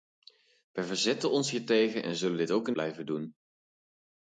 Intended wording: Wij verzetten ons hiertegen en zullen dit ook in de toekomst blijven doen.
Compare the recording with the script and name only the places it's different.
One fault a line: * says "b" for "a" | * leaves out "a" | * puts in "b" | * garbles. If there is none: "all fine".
* leaves out "de toekomst"